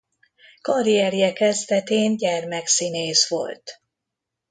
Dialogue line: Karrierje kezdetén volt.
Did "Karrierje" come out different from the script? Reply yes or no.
no